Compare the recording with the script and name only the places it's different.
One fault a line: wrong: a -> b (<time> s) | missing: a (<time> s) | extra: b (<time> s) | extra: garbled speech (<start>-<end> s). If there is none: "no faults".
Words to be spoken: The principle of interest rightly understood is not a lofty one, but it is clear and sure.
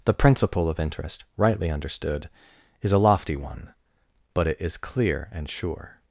missing: not (2.9 s)